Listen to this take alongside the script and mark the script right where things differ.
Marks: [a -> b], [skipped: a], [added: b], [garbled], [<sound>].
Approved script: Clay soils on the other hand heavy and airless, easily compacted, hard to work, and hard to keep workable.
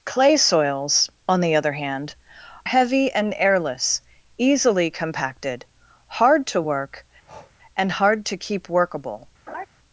Clay soils on the other hand heavy and airless, easily compacted, hard to work, [breath] and hard to keep workable. [laugh]